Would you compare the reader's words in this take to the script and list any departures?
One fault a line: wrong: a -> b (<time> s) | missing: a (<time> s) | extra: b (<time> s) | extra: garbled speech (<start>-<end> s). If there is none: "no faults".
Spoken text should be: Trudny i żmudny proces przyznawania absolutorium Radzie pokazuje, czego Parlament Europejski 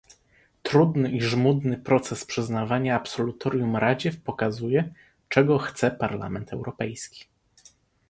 extra: chce (5.6 s)